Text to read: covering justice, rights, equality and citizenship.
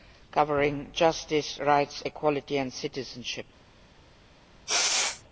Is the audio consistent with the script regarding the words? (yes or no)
yes